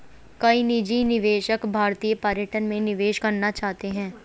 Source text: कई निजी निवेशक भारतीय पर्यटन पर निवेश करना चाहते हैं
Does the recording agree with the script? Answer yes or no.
no